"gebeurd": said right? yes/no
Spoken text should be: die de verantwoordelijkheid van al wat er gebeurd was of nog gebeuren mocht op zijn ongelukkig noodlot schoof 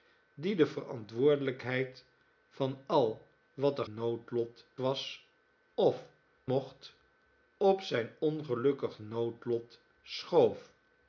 no